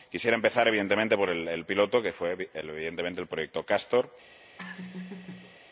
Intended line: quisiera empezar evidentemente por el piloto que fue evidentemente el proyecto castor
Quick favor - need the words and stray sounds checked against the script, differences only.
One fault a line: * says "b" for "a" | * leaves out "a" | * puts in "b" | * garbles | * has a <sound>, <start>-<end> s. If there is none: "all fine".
* has a laugh, 4.6-5.6 s